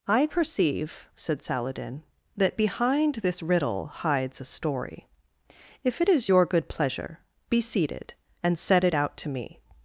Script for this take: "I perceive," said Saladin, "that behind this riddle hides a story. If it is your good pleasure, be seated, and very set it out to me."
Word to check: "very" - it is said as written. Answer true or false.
false